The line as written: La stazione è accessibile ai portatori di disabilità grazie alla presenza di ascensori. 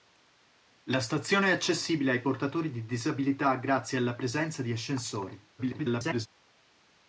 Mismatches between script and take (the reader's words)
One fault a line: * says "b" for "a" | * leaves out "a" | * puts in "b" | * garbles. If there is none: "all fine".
* garbles